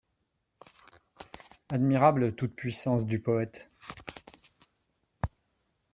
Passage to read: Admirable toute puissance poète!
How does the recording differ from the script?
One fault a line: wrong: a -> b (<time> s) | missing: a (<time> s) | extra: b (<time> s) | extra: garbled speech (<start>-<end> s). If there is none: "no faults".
extra: du (3.0 s)